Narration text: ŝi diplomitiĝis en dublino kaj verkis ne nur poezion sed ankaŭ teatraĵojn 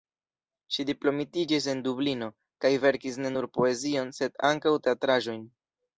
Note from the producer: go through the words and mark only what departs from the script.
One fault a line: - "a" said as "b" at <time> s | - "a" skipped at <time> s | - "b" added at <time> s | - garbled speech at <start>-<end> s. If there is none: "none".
none